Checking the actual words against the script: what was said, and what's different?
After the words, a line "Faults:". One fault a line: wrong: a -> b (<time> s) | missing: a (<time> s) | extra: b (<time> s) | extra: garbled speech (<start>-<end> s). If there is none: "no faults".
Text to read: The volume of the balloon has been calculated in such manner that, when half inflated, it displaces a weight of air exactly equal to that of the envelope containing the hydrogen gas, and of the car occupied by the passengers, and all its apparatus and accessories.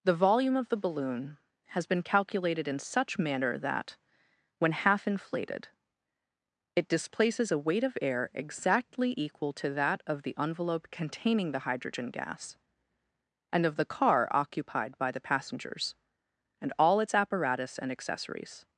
The volume of the balloon has been calculated in such manner that, when half inflated, it displaces a weight of air exactly equal to that of the envelope containing the hydrogen gas, and of the car occupied by the passengers, and all its apparatus and accessories.
Faults:
no faults